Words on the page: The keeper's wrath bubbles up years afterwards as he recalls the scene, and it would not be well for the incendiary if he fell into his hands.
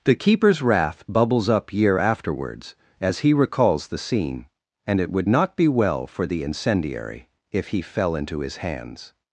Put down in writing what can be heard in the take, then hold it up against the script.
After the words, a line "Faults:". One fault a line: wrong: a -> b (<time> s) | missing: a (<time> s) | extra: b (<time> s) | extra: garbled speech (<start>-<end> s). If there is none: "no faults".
The keeper's wrath bubbles up year afterwards as he recalls the scene, and it would not be well for the incendiary if he fell into his hands.
Faults:
wrong: years -> year (1.7 s)